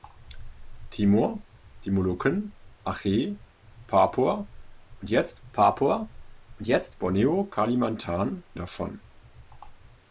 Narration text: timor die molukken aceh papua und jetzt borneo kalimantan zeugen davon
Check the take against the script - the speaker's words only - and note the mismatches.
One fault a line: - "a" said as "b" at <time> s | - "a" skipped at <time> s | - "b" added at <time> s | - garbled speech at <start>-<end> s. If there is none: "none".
- "papua und jetzt" added at 5.5 s
- "zeugen" skipped at 8.4 s